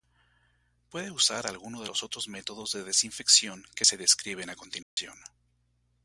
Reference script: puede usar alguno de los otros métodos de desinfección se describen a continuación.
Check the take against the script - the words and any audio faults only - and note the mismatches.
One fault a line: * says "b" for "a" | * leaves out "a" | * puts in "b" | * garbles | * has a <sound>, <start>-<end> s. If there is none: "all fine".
* puts in "que"
* has a dropout, 4.8-5.0 s